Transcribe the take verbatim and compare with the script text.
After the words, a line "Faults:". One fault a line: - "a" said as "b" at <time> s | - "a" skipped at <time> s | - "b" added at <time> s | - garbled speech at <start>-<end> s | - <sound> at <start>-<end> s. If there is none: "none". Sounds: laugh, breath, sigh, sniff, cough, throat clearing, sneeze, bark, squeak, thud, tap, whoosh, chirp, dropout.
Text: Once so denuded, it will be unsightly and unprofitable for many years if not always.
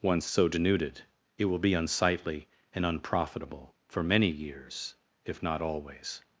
Once so denuded, it will be unsightly and unprofitable for many years if not always.
Faults:
none